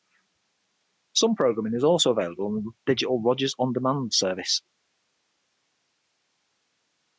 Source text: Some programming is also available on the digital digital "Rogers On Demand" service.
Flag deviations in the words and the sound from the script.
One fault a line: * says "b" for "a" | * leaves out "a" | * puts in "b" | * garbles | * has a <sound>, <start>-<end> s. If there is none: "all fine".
* leaves out "digital"